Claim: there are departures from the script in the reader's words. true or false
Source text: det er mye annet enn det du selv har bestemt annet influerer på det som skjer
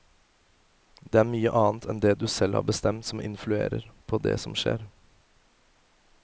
true